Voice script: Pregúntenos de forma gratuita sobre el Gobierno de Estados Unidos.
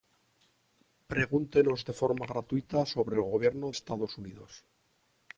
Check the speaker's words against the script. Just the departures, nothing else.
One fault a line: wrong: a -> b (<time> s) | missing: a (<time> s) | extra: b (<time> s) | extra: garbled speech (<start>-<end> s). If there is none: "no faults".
missing: de (3.7 s)